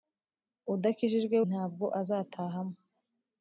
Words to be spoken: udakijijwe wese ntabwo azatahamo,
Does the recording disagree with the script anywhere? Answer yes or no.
yes